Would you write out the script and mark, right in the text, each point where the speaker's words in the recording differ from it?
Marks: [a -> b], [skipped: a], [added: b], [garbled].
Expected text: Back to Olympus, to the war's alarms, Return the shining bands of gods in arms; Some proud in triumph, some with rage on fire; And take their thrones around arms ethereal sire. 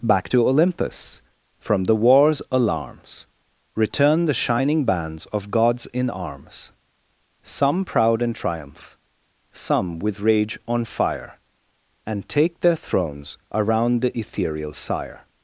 Back to Olympus, [to -> from] the war's alarms, Return the shining bands of gods in arms; Some proud in triumph, some with rage on fire; And take their thrones around [arms -> the] ethereal sire.